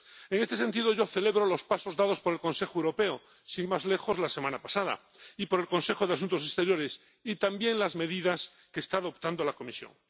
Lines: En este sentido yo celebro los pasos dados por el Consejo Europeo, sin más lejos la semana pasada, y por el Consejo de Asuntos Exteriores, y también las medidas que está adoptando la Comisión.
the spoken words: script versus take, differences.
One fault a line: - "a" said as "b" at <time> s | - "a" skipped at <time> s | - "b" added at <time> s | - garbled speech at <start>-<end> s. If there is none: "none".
none